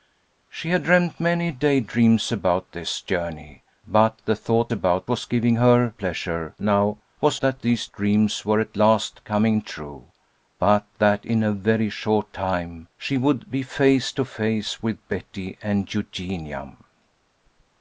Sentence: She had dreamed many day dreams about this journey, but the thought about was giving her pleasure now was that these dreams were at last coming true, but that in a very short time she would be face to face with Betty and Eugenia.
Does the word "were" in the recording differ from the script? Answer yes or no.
no